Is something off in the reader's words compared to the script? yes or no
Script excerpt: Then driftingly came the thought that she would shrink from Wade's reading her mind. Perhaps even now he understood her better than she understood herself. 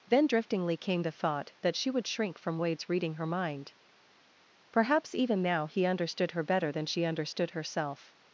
no